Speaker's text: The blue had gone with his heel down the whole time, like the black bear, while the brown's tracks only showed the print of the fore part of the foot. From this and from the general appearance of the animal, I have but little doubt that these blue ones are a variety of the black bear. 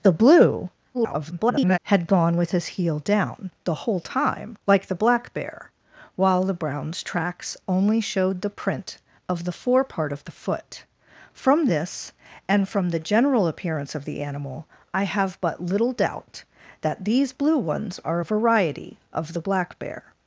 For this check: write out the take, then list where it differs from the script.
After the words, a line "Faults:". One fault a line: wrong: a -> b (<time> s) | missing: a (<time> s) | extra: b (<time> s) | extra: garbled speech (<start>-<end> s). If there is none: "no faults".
The blue [garbled] had gone with his heel down the whole time, like the black bear, while the brown's tracks only showed the print of the fore part of the foot. From this and from the general appearance of the animal, I have but little doubt that these blue ones are a variety of the black bear.
Faults:
extra: garbled speech (0.9-1.8 s)